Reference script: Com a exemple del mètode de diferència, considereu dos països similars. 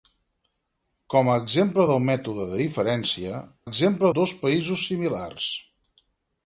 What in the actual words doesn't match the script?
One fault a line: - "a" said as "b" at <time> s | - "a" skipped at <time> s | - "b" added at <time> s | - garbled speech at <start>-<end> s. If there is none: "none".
- "considereu" said as "exemple" at 3.7 s